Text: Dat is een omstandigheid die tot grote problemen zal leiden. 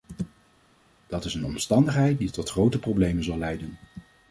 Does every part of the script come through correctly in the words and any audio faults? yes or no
yes